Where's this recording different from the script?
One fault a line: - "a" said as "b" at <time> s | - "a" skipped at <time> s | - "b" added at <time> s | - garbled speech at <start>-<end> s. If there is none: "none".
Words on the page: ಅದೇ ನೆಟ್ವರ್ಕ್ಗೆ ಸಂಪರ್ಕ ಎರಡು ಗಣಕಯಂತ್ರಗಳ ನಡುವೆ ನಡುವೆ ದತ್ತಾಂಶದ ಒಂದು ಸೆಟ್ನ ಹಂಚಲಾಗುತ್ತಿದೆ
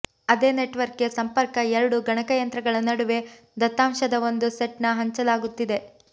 - "ನಡುವೆ" skipped at 3.2 s